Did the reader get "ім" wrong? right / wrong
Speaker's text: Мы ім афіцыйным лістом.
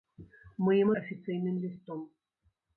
right